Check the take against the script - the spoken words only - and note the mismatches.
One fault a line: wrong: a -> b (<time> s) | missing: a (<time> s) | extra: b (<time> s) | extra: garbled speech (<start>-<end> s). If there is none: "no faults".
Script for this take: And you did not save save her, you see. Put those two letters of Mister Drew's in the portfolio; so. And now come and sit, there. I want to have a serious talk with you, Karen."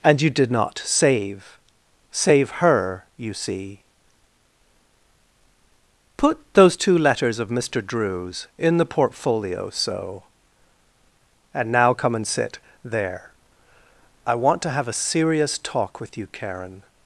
no faults